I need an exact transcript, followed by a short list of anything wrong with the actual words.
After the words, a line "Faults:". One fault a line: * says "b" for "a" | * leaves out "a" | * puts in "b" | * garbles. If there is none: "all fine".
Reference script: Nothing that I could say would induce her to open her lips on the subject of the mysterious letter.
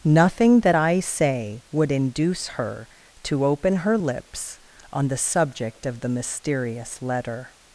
Nothing that I say would induce her to open her lips on the subject of the mysterious letter.
Faults:
* leaves out "could"